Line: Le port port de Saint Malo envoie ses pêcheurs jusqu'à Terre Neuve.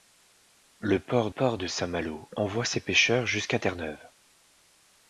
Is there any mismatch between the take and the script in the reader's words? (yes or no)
no